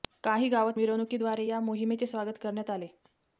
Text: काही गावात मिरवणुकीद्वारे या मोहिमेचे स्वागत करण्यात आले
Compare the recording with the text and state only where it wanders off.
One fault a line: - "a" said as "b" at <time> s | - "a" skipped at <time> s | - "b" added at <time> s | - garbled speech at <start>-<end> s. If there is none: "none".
none